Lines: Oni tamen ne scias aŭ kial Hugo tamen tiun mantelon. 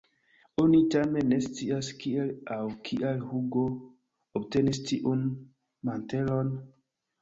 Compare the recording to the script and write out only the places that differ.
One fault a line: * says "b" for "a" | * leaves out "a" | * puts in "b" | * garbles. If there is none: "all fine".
* puts in "kiel"
* says "obtenis" for "tamen"